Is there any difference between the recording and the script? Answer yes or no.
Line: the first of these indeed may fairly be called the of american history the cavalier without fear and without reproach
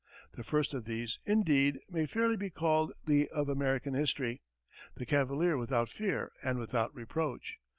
no